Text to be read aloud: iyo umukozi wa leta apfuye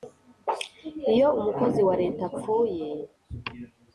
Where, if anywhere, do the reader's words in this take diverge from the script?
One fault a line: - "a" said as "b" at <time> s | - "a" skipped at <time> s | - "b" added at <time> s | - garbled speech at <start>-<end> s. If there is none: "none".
none